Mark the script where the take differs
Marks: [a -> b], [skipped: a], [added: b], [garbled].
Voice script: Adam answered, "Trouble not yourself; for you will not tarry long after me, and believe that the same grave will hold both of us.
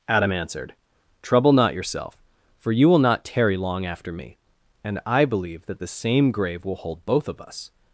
Adam answered, "Trouble not yourself; for you will not tarry long after me, and [added: I] believe that the same grave will hold both of us.